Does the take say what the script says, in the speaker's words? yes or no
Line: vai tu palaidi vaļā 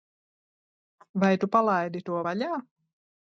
no